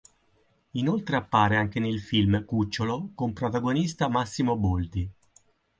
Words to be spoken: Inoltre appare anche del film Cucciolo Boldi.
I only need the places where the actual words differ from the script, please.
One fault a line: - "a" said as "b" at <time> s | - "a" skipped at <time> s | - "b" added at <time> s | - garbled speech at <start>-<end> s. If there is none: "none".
- "del" said as "nel" at 1.8 s
- "con protagonista Massimo" added at 3.1 s